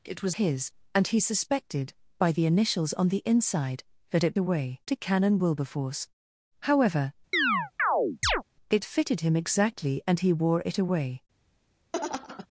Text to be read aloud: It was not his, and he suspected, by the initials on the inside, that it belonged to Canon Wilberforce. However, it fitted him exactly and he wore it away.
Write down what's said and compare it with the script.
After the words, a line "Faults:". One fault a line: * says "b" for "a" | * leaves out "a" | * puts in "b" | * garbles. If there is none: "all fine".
It was his, and he suspected, by the initials on the inside, that it away to Canon Wilberforce. However, it fitted him exactly and he wore it away.
Faults:
* leaves out "not"
* says "away" for "belonged"